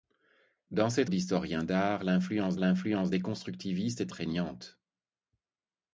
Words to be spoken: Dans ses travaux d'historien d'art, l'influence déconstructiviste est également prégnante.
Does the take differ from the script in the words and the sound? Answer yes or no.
yes